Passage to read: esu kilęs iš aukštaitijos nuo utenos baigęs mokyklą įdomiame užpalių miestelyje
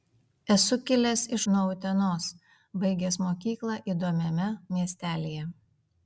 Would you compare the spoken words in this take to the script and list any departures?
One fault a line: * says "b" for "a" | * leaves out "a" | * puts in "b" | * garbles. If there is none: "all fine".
* leaves out "aukštaitijos"
* leaves out "užpalių"